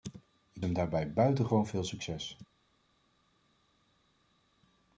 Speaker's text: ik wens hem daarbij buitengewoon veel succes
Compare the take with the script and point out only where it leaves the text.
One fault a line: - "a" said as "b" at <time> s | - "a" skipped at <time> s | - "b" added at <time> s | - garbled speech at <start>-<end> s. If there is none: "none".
- "wens" skipped at 0.7 s